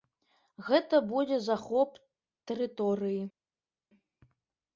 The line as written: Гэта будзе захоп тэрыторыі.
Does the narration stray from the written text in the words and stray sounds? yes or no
no